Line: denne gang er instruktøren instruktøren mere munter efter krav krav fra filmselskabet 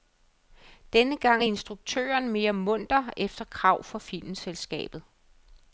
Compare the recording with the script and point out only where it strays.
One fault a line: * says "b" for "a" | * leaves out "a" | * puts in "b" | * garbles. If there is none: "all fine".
* leaves out "instruktøren"
* leaves out "krav"